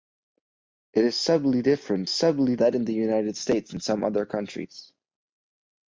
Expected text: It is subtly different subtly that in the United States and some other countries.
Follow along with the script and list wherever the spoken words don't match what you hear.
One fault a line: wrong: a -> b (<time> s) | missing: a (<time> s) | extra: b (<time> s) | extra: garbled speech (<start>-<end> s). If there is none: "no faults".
no faults